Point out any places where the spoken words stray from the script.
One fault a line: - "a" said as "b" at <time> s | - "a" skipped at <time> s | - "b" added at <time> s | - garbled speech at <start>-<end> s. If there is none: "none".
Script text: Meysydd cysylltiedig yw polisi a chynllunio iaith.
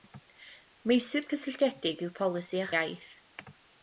- "chynllunio" skipped at 2.7 s